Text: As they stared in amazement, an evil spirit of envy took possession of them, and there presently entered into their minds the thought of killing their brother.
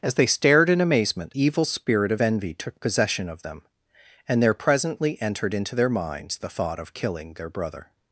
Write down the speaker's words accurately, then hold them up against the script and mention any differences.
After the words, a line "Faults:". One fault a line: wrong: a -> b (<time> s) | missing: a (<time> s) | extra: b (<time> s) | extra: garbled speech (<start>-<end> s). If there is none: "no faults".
As they stared in amazement, evil spirit of envy took possession of them, and there presently entered into their minds the thought of killing their brother.
Faults:
missing: an (1.4 s)